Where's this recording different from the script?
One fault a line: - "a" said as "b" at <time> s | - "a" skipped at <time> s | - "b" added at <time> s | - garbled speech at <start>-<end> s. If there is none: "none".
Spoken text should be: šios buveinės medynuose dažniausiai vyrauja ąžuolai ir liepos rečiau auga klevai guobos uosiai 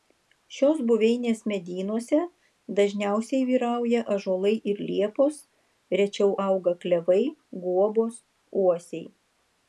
none